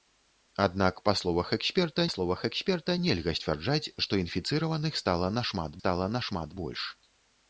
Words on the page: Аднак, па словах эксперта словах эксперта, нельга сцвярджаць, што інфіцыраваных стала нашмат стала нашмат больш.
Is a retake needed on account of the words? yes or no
no